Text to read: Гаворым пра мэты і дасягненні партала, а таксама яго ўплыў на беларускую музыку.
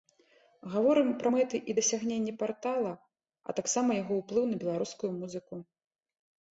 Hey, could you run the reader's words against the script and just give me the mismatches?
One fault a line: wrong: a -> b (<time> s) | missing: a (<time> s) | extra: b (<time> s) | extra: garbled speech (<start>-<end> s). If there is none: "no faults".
no faults